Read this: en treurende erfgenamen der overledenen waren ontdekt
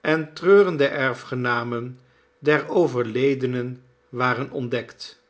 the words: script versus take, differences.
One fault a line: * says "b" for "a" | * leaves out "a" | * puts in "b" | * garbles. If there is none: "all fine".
all fine